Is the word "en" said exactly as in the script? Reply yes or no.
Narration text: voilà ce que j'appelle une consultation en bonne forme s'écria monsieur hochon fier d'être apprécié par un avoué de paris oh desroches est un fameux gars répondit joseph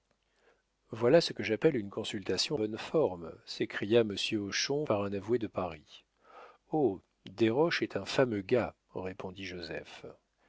no